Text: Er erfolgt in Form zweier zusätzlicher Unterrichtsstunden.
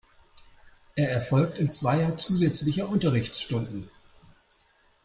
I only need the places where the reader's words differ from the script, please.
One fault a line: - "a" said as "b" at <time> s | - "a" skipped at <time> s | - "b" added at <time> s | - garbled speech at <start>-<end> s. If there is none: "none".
- "Form" skipped at 1.7 s